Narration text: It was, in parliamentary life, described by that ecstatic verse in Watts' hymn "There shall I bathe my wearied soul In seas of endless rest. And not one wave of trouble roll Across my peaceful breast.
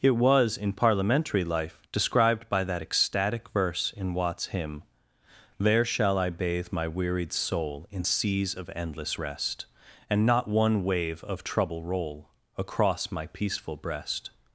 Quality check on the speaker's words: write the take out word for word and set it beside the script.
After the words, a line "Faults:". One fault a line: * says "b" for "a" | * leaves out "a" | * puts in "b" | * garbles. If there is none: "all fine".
It was, in parliamentary life, described by that ecstatic verse in Watts' hymn "There shall I bathe my wearied soul In seas of endless rest. And not one wave of trouble roll Across my peaceful breast.
Faults:
all fine